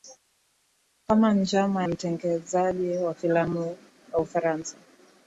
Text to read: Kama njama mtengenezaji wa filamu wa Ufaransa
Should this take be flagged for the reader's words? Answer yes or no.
no